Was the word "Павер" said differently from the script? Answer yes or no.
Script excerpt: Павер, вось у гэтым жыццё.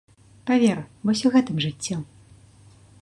no